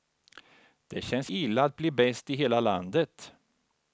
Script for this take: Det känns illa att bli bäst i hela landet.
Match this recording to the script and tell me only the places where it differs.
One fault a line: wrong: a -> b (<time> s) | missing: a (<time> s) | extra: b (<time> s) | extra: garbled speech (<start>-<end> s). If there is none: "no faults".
no faults